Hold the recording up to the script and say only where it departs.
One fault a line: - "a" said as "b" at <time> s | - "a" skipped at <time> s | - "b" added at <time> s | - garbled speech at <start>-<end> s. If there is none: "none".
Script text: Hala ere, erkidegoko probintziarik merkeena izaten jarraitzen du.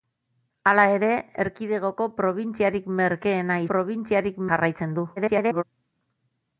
- "izaten" said as "probintziarik" at 3.7 s
- garbled speech at 5.2-5.6 s